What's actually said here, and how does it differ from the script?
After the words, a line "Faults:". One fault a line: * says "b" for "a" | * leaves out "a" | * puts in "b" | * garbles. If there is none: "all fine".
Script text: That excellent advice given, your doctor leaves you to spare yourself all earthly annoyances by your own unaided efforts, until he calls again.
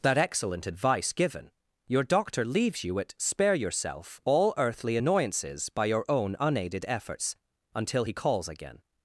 That excellent advice given, your doctor leaves you at spare yourself all earthly annoyances by your own unaided efforts, until he calls again.
Faults:
* says "at" for "to"